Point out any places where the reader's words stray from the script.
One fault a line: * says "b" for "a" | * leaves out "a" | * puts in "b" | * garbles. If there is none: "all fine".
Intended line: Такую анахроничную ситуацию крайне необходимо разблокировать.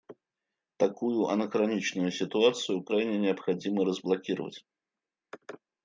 all fine